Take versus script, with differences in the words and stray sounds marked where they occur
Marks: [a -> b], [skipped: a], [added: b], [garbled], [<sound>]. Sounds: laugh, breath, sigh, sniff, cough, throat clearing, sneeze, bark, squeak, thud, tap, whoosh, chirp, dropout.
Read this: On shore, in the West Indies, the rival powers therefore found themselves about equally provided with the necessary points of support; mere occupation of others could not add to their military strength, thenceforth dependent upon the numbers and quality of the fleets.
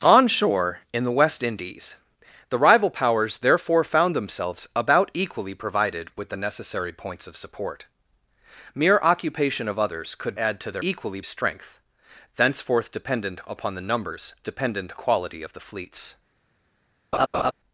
On shore, in the West Indies, the rival powers therefore found themselves about equally provided with the necessary points of support; mere occupation of others could [skipped: not] add to their [military -> equally] strength, thenceforth dependent upon the numbers [and -> dependent] quality of the fleets. [laugh]